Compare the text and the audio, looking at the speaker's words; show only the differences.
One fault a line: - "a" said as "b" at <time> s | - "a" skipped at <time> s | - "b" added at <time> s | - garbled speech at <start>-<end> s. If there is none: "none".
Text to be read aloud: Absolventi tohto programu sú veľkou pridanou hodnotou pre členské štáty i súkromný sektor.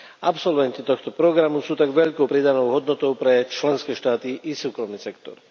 - "tak" added at 1.7 s